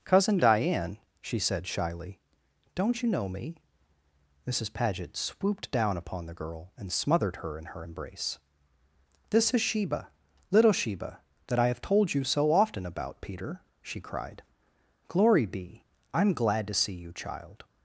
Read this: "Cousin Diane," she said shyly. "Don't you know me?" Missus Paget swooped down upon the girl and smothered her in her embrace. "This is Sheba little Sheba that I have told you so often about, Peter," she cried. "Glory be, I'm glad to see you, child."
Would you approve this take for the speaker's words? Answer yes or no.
yes